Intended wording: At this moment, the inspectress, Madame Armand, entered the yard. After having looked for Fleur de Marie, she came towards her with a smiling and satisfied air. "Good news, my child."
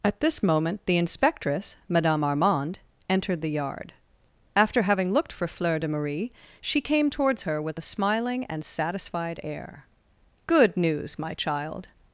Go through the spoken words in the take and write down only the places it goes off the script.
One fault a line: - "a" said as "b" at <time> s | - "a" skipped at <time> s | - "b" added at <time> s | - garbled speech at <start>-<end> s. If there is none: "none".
none